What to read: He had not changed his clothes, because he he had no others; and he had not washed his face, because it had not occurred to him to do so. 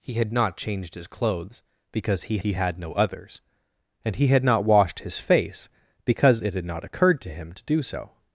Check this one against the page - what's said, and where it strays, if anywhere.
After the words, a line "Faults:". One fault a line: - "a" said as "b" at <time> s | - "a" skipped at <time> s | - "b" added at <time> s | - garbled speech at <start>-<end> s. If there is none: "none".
He had not changed his clothes, because he he had no others; and he had not washed his face, because it had not occurred to him to do so.
Faults:
none